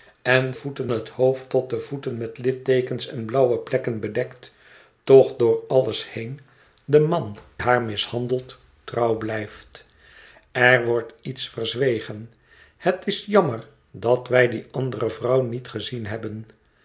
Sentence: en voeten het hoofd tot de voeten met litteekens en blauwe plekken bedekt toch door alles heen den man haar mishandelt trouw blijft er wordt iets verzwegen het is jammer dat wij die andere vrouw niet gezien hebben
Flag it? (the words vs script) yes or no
no